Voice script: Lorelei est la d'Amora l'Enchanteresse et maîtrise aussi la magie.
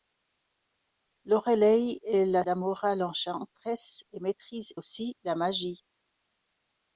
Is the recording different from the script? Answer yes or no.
no